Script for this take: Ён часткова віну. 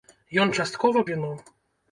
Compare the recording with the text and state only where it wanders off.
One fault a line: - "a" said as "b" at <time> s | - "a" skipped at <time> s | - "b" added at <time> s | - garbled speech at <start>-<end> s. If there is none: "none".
none